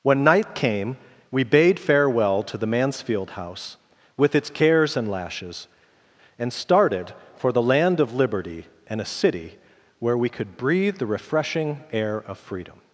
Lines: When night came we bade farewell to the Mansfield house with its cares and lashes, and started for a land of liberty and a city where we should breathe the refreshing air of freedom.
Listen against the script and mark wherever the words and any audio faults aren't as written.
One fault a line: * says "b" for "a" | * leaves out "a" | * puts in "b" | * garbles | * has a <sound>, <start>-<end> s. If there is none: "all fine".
* says "the" for "a"
* says "could" for "should"